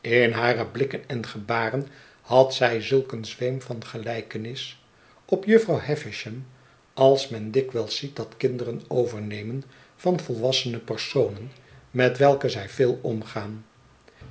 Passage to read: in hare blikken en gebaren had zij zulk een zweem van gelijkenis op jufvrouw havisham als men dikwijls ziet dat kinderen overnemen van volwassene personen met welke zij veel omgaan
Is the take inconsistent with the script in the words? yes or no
no